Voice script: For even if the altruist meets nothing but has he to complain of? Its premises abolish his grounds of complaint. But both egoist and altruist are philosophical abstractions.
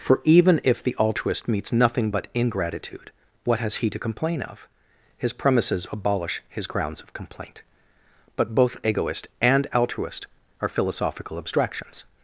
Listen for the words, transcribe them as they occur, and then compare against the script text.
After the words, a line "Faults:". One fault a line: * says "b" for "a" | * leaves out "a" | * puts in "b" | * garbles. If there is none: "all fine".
For even if the altruist meets nothing but ingratitude, what has he to complain of? His premises abolish his grounds of complaint. But both egoist and altruist are philosophical abstractions.
Faults:
* puts in "ingratitude what"
* says "His" for "Its"